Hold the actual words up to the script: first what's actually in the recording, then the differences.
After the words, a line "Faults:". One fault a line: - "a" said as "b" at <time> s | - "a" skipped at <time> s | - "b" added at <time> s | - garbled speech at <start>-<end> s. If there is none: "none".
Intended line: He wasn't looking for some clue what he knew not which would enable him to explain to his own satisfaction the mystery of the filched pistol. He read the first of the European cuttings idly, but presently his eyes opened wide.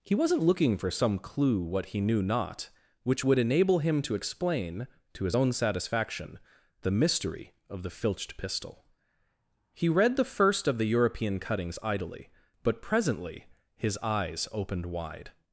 He wasn't looking for some clue what he knew not which would enable him to explain to his own satisfaction the mystery of the filched pistol. He read the first of the European cuttings idly, but presently his eyes opened wide.
Faults:
none